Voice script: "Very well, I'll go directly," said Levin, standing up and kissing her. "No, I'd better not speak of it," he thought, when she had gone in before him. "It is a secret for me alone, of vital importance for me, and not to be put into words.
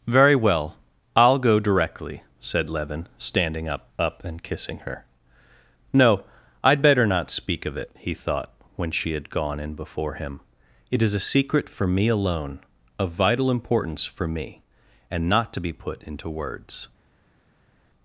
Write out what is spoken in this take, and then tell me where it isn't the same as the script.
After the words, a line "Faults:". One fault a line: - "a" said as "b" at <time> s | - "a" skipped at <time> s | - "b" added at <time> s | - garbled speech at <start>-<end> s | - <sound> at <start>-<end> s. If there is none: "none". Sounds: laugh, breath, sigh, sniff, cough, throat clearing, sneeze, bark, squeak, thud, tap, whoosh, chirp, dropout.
"Very well, I'll go directly," said Levin, standing up up and kissing her. "No, I'd better not speak of it," he thought, when she had gone in before him. "It is a secret for me alone, of vital importance for me, and not to be put into words.
Faults:
- "up" added at 4.0 s